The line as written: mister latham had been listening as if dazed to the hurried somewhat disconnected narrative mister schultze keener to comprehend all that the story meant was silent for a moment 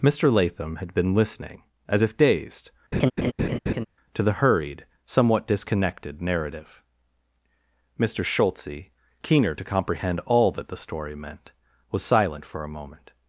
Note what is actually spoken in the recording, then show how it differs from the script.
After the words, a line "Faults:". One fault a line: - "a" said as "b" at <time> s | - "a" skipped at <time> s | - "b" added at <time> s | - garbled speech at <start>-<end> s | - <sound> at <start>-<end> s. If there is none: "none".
mister latham had been listening as if dazed to the hurried somewhat disconnected narrative mister schultze keener to comprehend all that the story meant was silent for a moment
Faults:
- laugh at 2.9-3.9 s